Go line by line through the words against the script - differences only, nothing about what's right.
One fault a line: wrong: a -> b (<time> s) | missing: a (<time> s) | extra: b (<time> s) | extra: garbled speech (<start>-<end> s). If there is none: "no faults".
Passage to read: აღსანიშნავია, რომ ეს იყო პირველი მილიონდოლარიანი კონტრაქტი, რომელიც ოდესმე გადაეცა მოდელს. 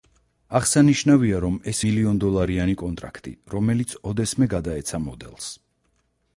missing: იყო პირველი (1.8 s)